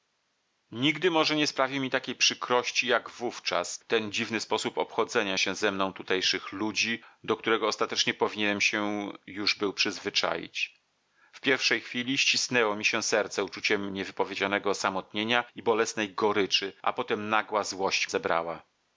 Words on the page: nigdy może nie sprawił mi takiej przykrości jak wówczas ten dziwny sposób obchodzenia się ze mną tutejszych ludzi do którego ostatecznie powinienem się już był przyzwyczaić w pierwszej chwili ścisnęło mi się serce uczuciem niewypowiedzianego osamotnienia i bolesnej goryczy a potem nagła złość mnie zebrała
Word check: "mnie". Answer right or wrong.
wrong